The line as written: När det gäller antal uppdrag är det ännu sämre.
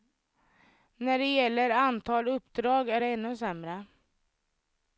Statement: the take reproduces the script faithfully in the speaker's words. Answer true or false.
true